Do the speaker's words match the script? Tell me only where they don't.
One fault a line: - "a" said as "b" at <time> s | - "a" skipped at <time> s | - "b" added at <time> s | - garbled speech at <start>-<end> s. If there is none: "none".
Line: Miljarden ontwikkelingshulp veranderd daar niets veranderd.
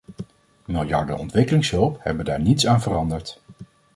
- "veranderd" said as "hebben" at 2.0 s
- "aan" added at 2.7 s